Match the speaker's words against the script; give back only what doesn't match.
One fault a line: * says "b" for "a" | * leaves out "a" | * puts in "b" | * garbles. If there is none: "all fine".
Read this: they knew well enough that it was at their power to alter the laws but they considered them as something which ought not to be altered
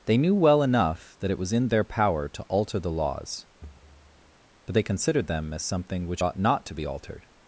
* says "in" for "at"